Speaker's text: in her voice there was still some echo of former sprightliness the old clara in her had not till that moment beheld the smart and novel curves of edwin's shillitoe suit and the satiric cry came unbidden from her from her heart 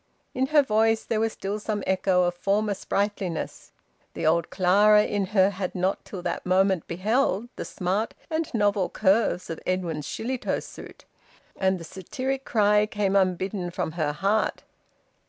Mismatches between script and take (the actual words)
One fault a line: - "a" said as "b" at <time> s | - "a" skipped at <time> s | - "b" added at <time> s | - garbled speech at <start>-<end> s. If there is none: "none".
- "from her" skipped at 14.1 s